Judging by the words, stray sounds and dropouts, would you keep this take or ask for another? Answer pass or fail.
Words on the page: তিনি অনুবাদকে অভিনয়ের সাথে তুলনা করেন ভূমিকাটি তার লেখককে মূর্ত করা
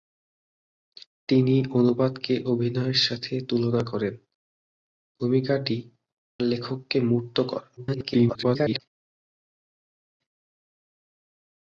fail